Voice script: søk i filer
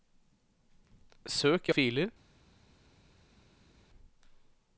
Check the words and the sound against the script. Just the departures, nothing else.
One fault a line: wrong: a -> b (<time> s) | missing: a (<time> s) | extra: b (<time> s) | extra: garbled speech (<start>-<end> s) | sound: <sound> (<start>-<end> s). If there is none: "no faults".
no faults